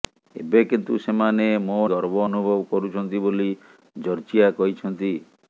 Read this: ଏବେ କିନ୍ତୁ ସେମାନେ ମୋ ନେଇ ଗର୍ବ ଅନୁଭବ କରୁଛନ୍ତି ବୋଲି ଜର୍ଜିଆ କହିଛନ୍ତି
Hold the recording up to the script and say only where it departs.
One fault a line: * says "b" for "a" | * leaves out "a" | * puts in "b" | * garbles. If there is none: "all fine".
* leaves out "ନେଇ"